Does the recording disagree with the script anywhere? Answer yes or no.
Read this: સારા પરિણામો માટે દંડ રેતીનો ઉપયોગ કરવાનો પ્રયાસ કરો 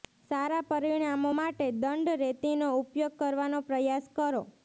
no